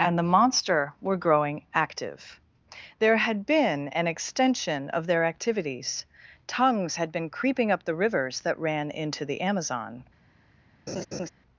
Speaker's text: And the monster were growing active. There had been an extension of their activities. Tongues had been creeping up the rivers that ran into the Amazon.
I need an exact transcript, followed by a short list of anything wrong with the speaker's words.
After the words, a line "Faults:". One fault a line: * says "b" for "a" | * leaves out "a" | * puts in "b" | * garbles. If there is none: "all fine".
And the monster were growing active. There had been an extension of their activities. Tongues had been creeping up the rivers that ran into the Amazon.
Faults:
all fine